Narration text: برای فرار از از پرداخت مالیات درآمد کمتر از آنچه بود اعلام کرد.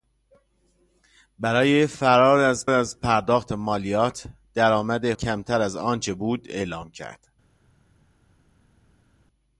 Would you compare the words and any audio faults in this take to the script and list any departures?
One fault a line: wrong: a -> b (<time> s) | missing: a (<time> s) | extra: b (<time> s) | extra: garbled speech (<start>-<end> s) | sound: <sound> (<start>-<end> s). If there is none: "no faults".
no faults